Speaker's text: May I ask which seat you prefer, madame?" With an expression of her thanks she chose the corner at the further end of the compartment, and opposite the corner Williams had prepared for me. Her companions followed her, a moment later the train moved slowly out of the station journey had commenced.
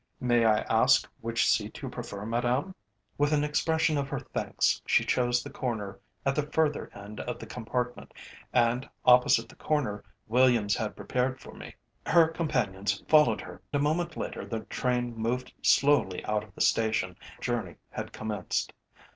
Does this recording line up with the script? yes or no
yes